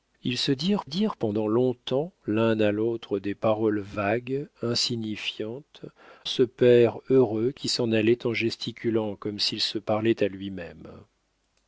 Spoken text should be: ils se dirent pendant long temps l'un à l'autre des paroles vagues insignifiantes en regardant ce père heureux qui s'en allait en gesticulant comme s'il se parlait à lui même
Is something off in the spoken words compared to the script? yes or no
yes